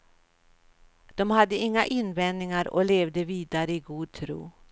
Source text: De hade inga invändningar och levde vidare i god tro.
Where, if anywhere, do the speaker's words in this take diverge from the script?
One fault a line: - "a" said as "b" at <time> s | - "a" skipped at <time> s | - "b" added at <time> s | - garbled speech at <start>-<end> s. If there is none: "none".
none